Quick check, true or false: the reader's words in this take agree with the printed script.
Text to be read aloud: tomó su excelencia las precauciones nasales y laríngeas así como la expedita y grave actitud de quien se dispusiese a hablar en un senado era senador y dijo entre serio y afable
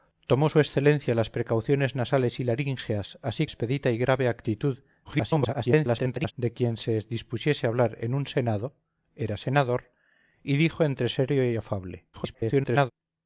false